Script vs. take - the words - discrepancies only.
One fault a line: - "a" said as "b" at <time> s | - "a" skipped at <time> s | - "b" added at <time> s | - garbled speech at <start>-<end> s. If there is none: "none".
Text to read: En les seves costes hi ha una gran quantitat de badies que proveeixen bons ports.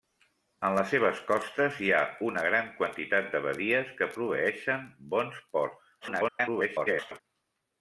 - garbled speech at 6.0-7.2 s